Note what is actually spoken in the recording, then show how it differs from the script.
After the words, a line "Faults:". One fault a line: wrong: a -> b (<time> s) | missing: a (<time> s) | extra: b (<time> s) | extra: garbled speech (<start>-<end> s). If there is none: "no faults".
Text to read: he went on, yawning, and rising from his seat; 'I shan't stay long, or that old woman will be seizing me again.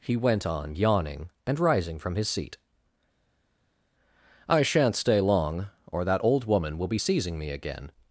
he went on, yawning, and rising from his seat; 'I shan't stay long, or that old woman will be seizing me again.
Faults:
no faults